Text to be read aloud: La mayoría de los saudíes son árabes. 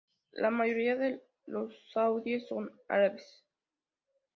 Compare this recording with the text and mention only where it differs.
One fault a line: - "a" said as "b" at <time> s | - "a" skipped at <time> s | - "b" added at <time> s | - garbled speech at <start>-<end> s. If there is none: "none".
none